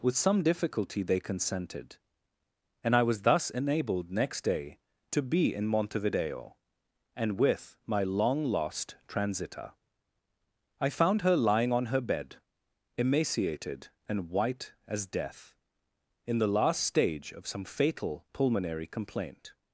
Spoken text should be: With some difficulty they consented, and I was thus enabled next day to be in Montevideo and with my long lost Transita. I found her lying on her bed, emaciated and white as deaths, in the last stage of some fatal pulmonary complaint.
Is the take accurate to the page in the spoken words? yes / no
no